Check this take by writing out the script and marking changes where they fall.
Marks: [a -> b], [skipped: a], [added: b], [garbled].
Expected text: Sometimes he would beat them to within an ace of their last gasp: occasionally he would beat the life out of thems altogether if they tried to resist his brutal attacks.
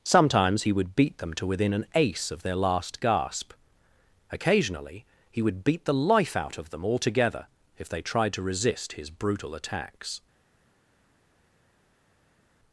Sometimes he would beat them to within an ace of their last gasp: occasionally he would beat the life out of [thems -> them] altogether if they tried to resist his brutal attacks.